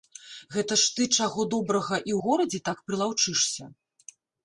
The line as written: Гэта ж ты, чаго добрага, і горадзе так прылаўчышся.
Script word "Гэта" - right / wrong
right